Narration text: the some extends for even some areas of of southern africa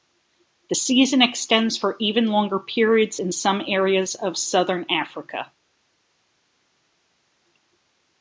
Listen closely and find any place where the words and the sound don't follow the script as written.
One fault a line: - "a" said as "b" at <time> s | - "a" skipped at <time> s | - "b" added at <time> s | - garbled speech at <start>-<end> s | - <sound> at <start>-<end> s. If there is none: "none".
- "some" said as "season" at 0.7 s
- "longer periods in" added at 2.3 s
- "of" skipped at 4.4 s